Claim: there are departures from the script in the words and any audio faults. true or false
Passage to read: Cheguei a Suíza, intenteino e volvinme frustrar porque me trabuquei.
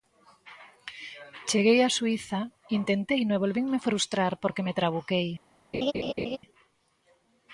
true